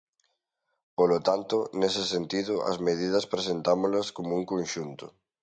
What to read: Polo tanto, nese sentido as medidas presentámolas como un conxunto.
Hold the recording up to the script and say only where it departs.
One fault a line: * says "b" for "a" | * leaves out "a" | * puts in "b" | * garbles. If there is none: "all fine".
all fine